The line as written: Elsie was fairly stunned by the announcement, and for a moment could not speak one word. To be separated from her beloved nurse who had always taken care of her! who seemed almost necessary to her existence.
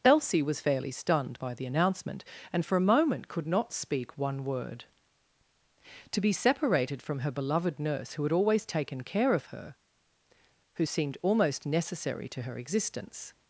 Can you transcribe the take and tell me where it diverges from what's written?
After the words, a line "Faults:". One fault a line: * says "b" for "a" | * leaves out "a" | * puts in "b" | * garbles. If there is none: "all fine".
Elsie was fairly stunned by the announcement, and for a moment could not speak one word. To be separated from her beloved nurse who had always taken care of her! who seemed almost necessary to her existence.
Faults:
all fine